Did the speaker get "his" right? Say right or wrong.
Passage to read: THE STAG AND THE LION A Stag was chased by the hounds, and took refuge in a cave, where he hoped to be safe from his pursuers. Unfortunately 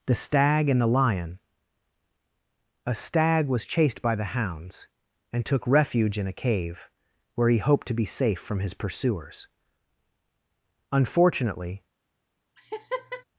right